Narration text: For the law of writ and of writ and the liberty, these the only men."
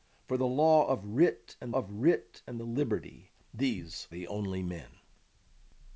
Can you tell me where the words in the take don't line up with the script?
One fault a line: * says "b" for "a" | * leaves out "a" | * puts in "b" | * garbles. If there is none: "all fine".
all fine